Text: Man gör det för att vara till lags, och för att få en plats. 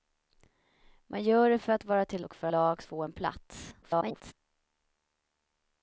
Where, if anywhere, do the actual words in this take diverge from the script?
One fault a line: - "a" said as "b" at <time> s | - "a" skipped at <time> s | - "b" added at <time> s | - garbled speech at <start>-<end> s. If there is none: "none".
- "lags" skipped at 2.2 s
- "att" said as "lags" at 2.5 s
- garbled speech at 3.8-4.3 s